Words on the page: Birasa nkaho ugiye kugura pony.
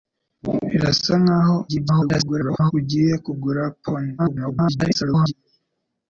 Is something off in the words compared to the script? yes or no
yes